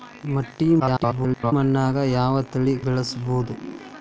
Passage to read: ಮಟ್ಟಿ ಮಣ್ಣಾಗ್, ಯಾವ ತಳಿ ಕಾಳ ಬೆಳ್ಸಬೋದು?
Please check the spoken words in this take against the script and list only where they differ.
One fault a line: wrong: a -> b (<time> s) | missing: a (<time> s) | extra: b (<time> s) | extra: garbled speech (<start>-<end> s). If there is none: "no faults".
extra: garbled speech (0.8-1.5 s)
missing: ಕಾಳ (2.7 s)